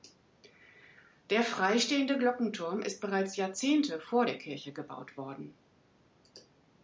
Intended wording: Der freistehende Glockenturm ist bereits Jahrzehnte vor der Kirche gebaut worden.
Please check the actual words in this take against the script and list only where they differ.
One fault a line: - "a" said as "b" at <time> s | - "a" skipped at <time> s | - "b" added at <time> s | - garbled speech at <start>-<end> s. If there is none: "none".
none